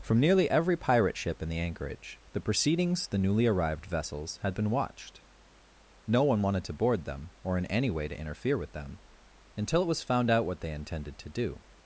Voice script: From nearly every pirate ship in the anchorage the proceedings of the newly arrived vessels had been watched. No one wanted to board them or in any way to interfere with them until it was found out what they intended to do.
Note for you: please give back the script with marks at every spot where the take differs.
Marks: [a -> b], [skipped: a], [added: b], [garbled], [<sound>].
From nearly every pirate ship in the anchorage the proceedings [skipped: of] the newly arrived vessels had been watched. No one wanted to board them or in any way to interfere with them until it was found out what they intended to do.